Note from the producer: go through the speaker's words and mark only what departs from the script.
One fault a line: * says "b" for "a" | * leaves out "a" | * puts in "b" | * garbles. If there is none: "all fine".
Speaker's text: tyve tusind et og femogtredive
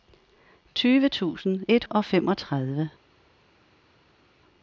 all fine